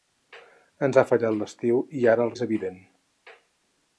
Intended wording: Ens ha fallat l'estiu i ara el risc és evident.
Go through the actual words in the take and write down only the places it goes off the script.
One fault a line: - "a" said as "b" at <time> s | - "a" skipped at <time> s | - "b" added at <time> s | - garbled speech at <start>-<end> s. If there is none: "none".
- "risc" skipped at 2.4 s